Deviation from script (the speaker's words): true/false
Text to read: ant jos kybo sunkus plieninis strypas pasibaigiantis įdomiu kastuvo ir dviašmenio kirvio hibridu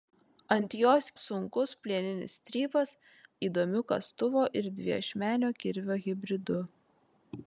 true